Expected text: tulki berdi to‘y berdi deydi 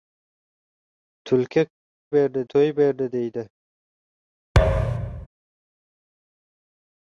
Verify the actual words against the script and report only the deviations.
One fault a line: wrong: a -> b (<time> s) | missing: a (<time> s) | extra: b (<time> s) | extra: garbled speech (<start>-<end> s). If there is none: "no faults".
no faults